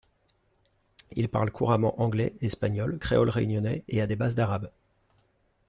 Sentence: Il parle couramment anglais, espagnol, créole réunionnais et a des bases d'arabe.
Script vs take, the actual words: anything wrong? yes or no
no